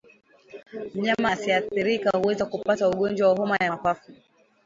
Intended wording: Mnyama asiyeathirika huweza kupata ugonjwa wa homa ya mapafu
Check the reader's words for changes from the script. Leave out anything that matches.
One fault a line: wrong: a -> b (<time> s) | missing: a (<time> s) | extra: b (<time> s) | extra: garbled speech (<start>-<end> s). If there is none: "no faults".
no faults